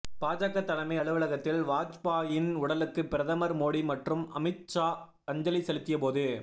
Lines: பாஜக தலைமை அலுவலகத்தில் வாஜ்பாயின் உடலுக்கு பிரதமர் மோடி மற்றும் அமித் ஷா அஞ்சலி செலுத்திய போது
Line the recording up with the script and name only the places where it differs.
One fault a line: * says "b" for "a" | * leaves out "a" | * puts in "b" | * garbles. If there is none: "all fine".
all fine